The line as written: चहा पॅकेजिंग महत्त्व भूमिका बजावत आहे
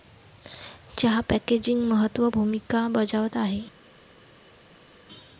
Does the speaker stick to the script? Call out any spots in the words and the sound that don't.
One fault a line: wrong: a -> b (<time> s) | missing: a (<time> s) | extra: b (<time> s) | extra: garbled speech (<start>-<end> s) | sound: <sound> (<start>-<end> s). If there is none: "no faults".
no faults